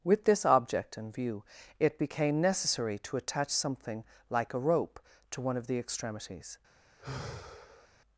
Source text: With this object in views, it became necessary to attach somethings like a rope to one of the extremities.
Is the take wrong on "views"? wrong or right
wrong